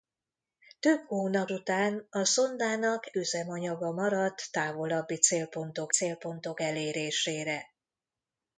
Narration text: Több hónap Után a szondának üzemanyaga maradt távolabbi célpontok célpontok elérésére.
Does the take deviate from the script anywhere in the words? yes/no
no